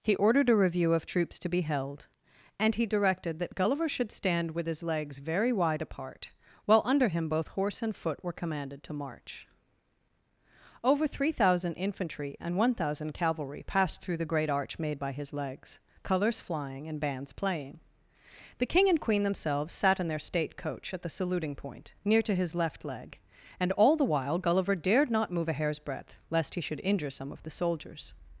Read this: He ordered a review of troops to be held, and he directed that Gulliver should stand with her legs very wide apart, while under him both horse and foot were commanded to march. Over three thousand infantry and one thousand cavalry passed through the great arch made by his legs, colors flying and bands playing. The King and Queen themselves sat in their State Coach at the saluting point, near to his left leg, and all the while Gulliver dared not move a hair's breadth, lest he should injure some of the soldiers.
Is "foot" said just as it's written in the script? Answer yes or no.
yes